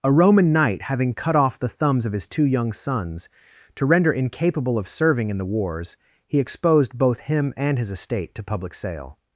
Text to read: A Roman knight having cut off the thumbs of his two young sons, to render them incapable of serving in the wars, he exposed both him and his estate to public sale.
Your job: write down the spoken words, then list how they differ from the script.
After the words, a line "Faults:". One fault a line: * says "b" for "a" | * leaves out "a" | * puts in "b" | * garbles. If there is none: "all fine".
A Roman knight having cut off the thumbs of his two young sons, to render incapable of serving in the wars, he exposed both him and his estate to public sale.
Faults:
* leaves out "them"